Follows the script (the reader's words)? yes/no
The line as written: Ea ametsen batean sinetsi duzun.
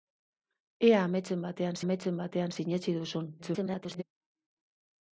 no